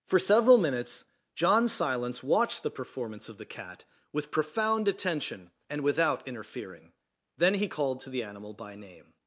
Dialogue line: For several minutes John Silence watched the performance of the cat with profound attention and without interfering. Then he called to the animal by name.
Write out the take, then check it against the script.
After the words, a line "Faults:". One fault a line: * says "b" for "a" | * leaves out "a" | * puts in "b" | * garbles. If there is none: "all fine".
For several minutes John Silence watched the performance of the cat with profound attention and without interfering. Then he called to the animal by name.
Faults:
all fine